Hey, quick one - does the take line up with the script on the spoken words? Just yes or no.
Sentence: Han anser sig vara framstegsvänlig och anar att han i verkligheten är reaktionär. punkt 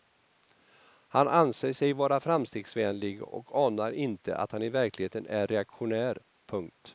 no